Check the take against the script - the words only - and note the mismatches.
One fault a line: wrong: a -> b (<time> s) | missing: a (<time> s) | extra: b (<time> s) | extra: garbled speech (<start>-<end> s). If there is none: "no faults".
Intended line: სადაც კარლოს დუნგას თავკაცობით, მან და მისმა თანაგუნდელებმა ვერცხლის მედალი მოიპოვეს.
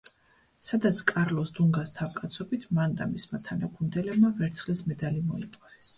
no faults